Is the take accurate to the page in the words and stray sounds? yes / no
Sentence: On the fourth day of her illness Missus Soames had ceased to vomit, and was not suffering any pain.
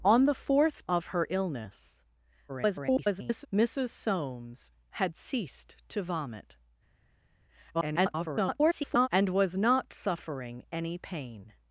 no